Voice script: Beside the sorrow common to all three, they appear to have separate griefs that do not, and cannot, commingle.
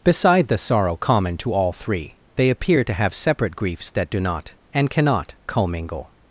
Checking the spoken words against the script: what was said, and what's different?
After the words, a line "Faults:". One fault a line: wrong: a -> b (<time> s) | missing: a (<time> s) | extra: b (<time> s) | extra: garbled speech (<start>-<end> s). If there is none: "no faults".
Beside the sorrow common to all three, they appear to have separate griefs that do not, and cannot, commingle.
Faults:
no faults